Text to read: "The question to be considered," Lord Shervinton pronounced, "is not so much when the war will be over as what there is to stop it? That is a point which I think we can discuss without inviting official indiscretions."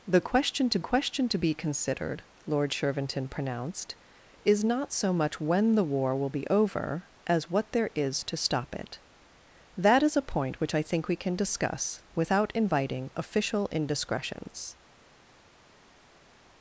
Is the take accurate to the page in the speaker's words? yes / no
no